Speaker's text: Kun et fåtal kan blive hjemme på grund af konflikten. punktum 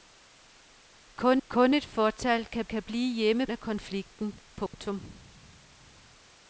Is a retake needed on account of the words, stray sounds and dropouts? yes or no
yes